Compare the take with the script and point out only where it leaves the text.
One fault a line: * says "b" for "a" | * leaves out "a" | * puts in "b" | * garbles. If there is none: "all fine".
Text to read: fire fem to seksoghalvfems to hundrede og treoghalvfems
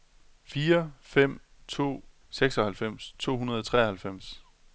all fine